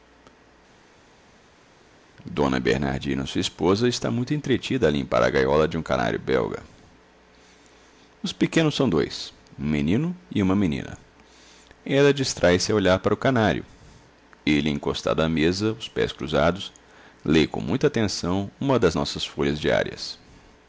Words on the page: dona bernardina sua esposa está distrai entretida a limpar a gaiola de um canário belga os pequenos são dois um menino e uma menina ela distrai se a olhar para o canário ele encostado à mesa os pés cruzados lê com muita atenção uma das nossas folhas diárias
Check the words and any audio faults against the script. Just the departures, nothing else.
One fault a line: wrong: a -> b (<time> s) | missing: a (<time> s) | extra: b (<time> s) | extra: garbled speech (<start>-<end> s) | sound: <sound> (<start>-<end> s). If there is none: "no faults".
wrong: distrai -> muito (4.1 s)